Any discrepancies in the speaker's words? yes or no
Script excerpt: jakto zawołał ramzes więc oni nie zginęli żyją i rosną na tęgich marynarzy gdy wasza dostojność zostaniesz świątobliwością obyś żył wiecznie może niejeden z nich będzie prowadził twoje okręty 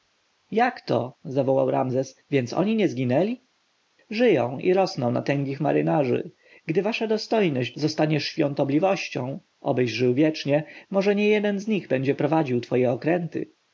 no